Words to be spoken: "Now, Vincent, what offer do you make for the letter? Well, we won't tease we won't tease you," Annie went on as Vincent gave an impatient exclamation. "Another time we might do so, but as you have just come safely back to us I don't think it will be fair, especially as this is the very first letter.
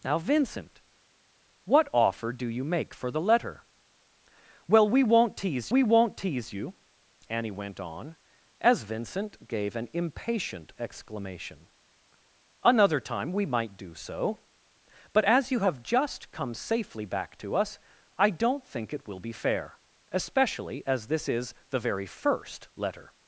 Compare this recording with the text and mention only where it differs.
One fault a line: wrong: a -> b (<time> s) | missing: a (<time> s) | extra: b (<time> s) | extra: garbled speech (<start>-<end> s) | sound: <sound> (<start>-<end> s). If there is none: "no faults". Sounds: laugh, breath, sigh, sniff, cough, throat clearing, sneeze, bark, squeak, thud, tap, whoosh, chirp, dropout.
no faults